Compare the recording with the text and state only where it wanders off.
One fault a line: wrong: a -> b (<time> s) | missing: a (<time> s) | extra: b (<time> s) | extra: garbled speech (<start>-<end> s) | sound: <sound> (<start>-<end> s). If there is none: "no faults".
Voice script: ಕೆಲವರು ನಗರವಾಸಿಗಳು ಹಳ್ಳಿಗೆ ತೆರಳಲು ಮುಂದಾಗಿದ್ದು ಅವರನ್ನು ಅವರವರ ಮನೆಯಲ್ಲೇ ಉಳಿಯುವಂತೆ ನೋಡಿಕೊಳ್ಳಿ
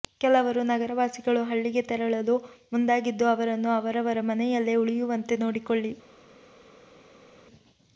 no faults